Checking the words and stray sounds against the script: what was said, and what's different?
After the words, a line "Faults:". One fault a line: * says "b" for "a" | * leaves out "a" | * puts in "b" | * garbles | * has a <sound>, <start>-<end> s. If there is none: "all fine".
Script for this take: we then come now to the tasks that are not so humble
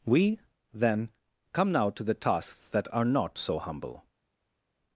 we then come now to the tasks that are not so humble
Faults:
all fine